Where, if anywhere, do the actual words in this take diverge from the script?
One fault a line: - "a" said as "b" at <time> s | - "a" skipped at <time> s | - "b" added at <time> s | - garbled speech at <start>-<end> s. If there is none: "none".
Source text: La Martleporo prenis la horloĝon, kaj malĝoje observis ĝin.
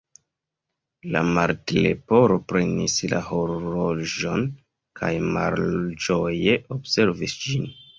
none